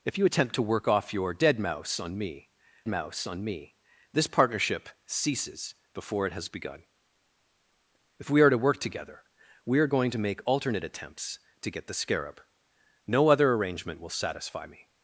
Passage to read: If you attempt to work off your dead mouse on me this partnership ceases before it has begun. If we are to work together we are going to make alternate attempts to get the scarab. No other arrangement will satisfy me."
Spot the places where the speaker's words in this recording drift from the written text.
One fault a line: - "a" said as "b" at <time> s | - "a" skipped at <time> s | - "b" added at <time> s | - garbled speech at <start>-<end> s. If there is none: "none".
- "mouse on me" added at 2.9 s